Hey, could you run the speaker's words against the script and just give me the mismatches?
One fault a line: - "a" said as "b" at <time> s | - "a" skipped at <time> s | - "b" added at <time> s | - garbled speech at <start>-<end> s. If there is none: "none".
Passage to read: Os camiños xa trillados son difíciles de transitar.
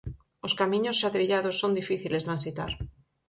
- "de" skipped at 2.2 s